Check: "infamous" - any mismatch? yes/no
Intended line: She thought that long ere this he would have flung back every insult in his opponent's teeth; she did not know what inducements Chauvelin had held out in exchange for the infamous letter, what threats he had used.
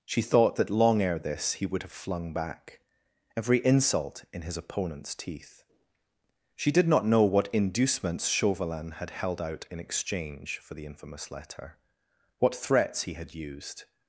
no